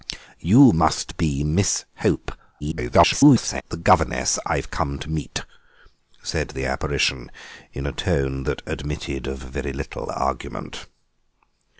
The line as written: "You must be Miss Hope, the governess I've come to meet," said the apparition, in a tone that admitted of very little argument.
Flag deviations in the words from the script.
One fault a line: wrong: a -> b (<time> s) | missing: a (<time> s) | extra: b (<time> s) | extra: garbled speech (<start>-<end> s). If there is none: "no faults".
extra: garbled speech (2.6-3.6 s)